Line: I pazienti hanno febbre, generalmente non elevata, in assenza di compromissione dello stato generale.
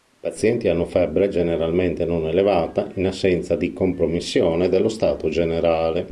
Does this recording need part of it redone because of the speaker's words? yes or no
no